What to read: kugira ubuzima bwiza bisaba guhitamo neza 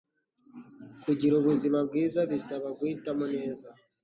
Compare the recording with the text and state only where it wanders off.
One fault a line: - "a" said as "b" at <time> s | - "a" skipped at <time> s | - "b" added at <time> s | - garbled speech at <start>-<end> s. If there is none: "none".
none